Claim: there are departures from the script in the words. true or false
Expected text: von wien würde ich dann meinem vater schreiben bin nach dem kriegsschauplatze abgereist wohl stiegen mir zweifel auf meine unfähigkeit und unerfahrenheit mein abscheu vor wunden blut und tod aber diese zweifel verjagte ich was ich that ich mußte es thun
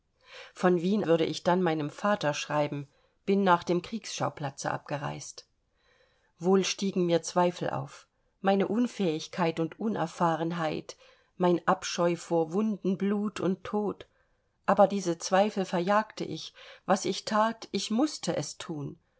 false